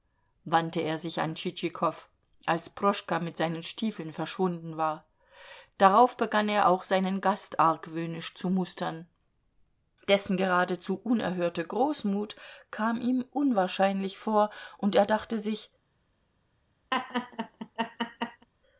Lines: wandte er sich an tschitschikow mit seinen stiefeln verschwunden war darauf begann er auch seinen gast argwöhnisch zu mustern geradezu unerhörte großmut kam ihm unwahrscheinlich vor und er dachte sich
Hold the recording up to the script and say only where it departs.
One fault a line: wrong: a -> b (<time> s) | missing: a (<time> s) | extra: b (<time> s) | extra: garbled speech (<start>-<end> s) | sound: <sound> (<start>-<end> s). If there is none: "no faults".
extra: als proschka (2.5 s)
extra: dessen (10.1 s)
sound: laugh (16.9-18.5 s)